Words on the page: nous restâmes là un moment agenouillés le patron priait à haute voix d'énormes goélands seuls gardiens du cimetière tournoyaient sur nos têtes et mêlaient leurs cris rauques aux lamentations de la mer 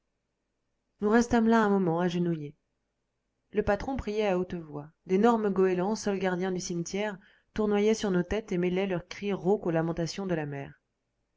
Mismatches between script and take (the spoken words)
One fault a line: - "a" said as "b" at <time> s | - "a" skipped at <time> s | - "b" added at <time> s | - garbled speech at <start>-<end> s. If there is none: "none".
none